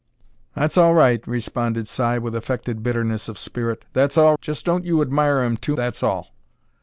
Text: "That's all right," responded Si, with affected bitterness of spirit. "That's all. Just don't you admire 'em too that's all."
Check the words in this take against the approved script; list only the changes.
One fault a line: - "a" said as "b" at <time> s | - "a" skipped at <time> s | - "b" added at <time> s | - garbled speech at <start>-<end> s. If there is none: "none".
none